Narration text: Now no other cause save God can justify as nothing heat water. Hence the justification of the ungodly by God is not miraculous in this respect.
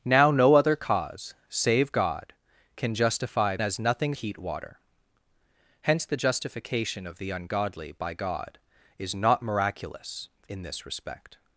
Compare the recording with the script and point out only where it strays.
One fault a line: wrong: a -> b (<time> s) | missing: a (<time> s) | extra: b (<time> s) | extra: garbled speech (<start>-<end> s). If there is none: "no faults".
no faults